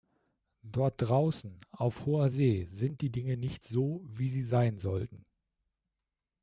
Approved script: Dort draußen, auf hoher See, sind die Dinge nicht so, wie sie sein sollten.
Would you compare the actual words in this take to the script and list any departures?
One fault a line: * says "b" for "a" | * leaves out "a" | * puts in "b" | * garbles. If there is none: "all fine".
all fine